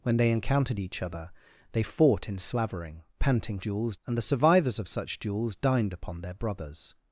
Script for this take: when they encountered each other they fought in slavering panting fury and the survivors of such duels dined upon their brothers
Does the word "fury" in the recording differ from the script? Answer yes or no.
yes